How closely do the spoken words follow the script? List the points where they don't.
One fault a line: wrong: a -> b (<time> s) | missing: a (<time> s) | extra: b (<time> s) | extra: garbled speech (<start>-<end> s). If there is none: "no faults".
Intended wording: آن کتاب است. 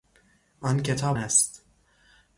no faults